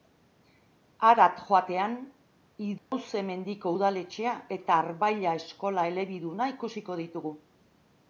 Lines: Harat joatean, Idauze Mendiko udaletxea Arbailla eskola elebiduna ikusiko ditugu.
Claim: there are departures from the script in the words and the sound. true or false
true